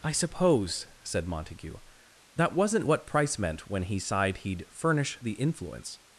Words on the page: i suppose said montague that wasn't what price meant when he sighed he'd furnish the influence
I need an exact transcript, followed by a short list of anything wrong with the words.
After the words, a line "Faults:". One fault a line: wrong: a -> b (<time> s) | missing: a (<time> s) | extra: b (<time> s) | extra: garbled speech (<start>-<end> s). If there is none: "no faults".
i suppose said montague that wasn't what price meant when he sighed he'd furnish the influence
Faults:
no faults